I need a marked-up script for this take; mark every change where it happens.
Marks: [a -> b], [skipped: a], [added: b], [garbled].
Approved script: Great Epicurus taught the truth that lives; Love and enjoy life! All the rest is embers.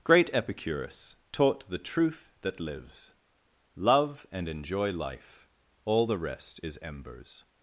Great Epicurus taught the truth that lives; Love and enjoy life! All the rest is embers.